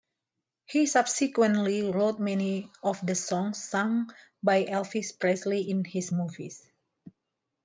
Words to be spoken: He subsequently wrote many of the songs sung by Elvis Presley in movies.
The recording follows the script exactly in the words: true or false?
false